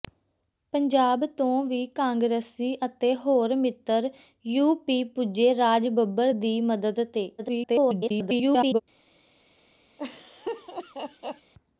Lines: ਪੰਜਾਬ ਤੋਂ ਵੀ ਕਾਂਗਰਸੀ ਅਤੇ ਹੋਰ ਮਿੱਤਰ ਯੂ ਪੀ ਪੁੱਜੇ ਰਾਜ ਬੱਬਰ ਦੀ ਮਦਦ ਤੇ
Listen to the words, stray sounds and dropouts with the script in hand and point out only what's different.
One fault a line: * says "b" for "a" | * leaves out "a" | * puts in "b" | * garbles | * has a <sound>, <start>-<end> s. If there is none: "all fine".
* garbles
* has a laugh, 10.0-11.5 s